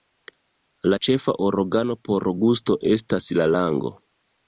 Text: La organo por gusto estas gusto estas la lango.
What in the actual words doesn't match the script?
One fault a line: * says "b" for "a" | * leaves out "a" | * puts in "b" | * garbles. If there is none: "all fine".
* puts in "ĉefa"
* leaves out "gusto estas"